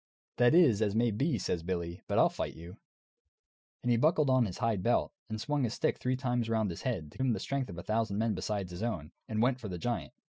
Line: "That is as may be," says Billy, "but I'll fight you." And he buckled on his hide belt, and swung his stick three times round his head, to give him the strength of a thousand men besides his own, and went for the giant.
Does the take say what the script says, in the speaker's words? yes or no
no